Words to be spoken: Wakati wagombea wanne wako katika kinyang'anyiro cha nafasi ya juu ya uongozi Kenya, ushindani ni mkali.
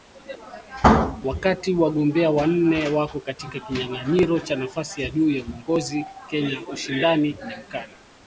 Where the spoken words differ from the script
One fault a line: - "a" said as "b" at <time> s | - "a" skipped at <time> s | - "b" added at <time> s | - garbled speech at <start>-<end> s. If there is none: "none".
none